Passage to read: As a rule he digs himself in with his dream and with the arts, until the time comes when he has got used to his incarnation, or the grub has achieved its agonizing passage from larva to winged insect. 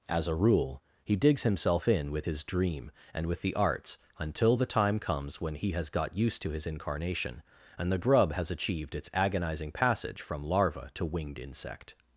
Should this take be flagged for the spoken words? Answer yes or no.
yes